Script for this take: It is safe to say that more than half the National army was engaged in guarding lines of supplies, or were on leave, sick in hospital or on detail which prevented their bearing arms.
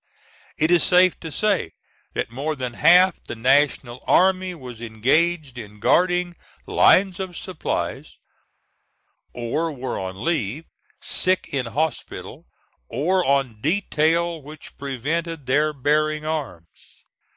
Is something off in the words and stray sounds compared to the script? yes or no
no